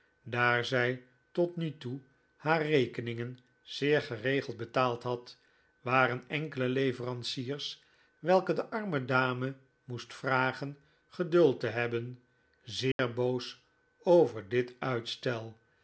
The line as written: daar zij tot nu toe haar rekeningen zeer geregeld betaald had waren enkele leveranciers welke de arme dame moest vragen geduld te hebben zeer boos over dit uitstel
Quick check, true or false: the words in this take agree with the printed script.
true